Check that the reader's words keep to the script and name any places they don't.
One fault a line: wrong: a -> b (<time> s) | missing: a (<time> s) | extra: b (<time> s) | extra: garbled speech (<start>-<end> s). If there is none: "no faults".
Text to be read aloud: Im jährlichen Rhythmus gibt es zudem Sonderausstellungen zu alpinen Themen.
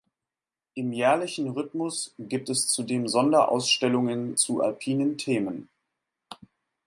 no faults